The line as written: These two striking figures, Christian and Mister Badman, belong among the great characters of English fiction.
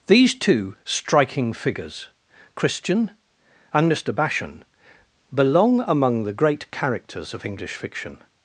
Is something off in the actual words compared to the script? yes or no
yes